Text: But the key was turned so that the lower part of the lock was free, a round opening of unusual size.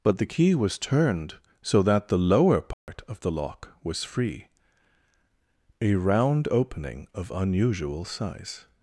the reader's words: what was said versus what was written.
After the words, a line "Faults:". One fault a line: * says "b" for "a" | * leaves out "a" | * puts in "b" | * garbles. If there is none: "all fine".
But the key was turned so that the lower part of the lock was free, a round opening of unusual size.
Faults:
all fine